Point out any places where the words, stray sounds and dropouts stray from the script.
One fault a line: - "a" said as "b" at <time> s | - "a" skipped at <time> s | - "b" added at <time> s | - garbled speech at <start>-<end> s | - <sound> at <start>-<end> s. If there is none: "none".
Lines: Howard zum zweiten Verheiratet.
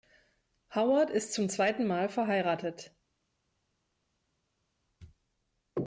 - "ist" added at 1.1 s
- "Mal" added at 1.9 s